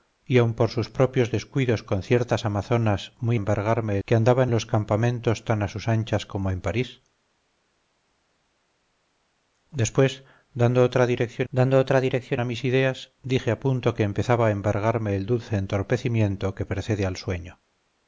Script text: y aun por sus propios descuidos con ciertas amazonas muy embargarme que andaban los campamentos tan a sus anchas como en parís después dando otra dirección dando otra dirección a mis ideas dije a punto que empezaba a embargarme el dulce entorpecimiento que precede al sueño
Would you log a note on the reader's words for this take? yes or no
no